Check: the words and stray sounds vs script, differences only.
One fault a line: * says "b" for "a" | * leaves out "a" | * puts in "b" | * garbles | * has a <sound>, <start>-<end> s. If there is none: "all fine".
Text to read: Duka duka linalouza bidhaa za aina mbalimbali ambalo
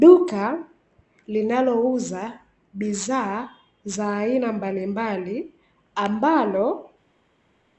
* leaves out "duka"